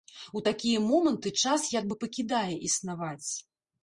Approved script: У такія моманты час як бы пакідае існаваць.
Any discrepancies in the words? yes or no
no